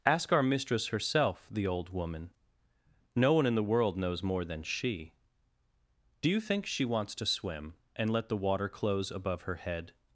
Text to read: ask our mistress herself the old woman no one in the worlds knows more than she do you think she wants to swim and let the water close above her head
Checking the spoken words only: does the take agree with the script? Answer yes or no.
no